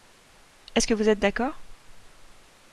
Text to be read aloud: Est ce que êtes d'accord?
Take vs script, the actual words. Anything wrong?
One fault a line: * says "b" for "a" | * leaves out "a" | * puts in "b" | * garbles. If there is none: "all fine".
* puts in "vous"